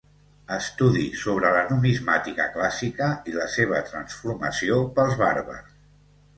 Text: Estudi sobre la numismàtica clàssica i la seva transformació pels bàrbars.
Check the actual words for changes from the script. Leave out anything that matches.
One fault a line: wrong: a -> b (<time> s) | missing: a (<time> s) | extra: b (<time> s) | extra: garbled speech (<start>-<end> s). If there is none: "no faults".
no faults